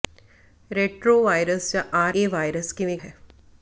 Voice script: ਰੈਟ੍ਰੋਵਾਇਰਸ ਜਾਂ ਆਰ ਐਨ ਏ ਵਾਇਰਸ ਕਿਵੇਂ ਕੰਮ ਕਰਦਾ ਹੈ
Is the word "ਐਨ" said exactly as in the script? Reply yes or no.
no